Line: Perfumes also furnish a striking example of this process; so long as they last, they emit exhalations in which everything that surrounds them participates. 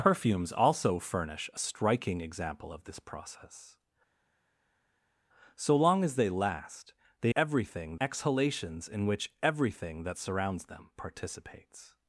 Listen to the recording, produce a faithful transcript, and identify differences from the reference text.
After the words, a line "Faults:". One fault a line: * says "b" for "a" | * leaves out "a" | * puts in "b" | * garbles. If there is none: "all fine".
Perfumes also furnish a striking example of this process; so long as they last, they everything exhalations in which everything that surrounds them participates.
Faults:
* says "everything" for "emit"